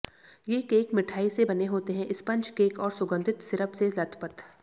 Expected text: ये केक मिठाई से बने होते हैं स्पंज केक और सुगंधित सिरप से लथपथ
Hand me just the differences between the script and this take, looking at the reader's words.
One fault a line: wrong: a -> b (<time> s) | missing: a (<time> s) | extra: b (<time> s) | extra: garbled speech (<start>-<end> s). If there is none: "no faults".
no faults